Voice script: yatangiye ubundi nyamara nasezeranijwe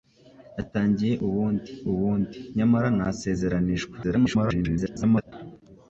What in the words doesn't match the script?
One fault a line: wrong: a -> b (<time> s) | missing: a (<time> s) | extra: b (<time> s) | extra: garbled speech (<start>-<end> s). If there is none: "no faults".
extra: ubundi (1.9 s)
extra: garbled speech (4.0-5.3 s)